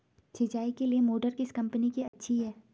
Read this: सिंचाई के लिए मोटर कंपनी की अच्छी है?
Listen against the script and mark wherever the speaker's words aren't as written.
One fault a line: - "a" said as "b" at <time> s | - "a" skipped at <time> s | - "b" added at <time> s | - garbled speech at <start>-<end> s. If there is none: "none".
- "किस" added at 1.3 s